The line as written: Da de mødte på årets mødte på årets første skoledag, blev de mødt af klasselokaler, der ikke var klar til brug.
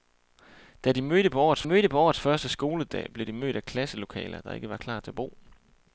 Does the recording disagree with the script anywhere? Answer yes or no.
no